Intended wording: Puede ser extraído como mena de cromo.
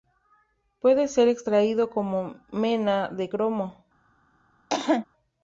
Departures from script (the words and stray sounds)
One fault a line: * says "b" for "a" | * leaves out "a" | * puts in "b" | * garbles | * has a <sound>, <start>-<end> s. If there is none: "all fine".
* has a cough, 4.7-5.1 s